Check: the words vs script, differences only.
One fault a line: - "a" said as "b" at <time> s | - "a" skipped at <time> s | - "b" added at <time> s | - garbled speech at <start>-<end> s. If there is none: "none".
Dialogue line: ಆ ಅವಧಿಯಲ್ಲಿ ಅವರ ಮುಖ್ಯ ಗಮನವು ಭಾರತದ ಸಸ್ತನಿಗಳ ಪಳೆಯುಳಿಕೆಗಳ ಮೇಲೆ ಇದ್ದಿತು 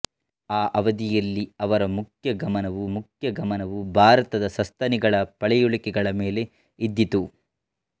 - "ಮುಖ್ಯ ಗಮನವು" added at 3.0 s